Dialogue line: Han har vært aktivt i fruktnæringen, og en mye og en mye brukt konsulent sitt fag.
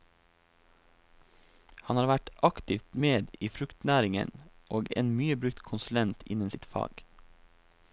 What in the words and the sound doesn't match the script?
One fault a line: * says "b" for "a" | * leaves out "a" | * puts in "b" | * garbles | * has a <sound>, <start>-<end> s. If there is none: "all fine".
* puts in "med"
* leaves out "og en mye"
* puts in "innen"